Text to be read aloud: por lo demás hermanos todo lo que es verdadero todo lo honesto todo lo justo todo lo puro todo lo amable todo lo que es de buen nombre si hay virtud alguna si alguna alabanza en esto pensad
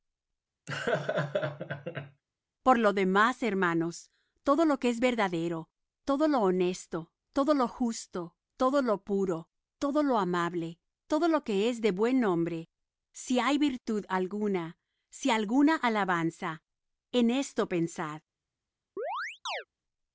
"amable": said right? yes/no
yes